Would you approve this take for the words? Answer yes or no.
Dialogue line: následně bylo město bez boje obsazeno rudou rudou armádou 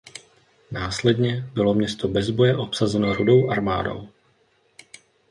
no